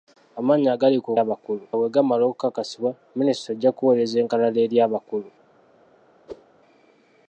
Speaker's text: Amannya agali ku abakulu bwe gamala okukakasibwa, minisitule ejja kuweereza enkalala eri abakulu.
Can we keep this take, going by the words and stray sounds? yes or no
no